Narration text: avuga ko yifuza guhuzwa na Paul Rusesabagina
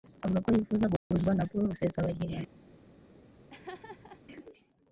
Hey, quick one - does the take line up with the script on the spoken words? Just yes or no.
yes